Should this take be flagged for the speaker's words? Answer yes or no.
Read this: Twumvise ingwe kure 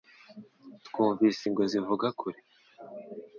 yes